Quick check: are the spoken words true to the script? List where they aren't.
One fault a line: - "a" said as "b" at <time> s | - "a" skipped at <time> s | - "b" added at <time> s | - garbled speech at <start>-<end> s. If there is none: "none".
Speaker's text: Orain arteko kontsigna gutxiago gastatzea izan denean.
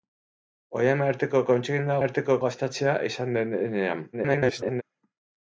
- "gutxiago" said as "arteko" at 2.0 s
- garbled speech at 4.1-4.8 s